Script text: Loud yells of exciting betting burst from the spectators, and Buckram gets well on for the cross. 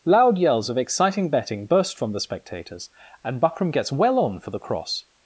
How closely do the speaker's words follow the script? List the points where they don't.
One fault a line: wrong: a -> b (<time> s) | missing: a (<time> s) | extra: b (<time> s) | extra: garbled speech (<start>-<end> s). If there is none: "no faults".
no faults